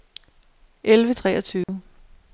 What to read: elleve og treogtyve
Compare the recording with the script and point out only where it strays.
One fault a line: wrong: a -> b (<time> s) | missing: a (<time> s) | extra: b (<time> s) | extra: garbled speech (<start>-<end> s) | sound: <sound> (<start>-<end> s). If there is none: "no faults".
sound: dropout (1.6-1.7 s)